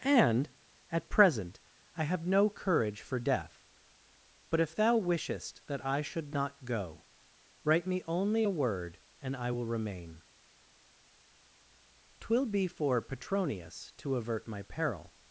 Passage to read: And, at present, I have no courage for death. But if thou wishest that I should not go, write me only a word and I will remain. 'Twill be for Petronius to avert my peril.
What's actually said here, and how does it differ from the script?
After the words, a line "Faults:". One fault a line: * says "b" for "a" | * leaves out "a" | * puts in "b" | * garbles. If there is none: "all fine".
And, at present, I have no courage for death. But if thou wishest that I should not go, write me only a word and I will remain. 'Twill be for Petronius to avert my peril.
Faults:
all fine